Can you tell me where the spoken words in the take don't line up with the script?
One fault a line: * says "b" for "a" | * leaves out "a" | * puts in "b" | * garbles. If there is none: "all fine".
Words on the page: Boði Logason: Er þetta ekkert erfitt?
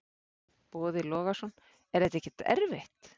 all fine